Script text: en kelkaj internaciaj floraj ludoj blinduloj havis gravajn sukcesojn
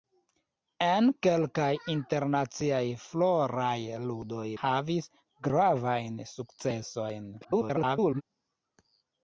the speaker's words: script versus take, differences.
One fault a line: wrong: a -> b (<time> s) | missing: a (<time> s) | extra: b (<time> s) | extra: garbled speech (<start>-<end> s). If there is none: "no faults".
missing: blinduloj (4.5 s)
extra: garbled speech (7.4-8.2 s)